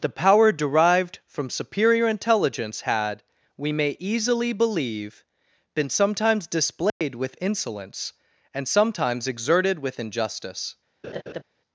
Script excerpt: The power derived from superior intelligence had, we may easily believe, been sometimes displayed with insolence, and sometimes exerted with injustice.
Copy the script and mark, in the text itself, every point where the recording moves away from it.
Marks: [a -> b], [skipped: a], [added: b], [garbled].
The power derived from superior intelligence had, we may easily believe, been sometimes displayed with insolence, and sometimes exerted with injustice.